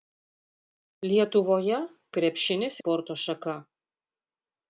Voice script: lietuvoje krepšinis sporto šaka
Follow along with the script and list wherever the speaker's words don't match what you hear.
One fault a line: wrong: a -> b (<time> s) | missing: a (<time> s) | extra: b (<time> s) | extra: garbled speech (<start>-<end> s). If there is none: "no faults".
no faults